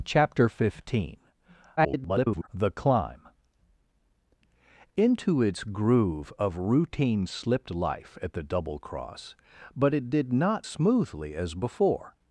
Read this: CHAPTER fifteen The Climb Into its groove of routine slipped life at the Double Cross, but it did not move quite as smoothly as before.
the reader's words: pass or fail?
fail